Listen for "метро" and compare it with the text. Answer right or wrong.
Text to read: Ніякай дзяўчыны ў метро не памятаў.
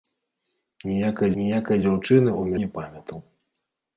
wrong